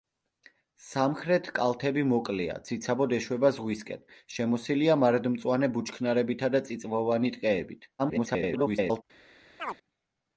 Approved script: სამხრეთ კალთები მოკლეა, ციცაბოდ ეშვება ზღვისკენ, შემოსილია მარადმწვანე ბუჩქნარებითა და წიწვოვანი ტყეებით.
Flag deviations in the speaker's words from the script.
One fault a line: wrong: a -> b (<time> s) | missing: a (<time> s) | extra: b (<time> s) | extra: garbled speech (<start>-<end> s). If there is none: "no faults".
extra: garbled speech (8.0-9.0 s)